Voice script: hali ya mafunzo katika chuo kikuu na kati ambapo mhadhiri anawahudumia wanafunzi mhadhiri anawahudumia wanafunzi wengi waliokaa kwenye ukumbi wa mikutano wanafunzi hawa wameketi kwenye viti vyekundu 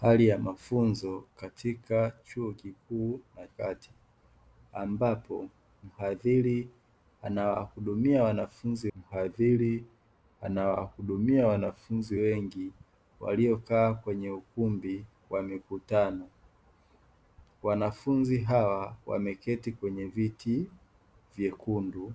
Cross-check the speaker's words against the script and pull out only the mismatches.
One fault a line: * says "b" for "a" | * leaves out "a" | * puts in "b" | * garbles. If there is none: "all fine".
all fine